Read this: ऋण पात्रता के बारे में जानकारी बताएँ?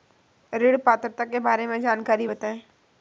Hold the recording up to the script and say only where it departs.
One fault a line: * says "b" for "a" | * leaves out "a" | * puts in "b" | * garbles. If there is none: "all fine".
all fine